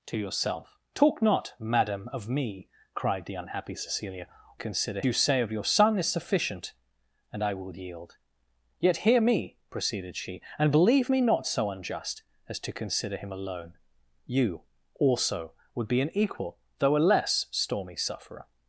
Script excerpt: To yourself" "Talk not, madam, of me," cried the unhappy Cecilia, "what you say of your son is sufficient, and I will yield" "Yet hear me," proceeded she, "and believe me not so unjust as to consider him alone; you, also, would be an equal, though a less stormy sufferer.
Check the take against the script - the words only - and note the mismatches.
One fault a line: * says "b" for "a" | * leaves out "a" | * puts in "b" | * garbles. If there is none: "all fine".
* says "consider" for "what"